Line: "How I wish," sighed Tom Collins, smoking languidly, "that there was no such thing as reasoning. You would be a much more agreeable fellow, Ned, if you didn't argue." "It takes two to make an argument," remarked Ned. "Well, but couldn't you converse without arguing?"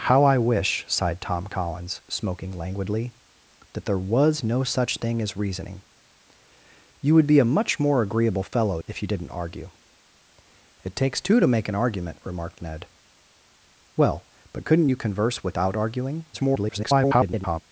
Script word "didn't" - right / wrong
right